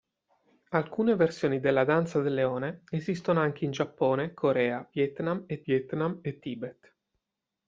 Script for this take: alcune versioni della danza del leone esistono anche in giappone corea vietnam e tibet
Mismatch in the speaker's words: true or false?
true